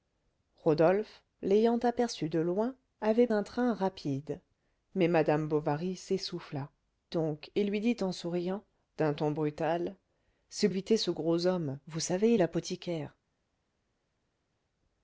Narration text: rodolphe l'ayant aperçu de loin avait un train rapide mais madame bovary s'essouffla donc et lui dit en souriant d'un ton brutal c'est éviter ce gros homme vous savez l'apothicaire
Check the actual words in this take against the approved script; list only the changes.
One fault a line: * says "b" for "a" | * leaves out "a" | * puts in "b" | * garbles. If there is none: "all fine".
all fine